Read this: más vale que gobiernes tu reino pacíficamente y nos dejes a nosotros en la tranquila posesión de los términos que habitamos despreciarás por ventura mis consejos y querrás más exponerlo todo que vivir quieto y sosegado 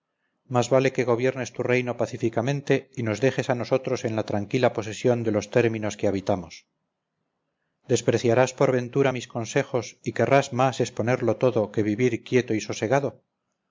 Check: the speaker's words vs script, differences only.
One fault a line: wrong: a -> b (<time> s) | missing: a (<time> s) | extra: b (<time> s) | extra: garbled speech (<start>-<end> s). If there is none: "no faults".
no faults